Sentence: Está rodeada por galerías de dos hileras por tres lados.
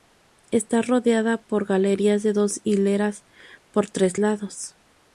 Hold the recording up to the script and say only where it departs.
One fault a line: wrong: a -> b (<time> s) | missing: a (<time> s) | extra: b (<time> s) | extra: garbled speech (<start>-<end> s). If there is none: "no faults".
no faults